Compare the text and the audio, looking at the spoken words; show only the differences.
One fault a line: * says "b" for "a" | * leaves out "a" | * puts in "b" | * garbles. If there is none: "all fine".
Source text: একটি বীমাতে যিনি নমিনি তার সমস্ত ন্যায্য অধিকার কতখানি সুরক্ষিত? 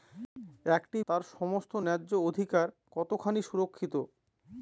* leaves out "বীমাতে যিনি নমিনি"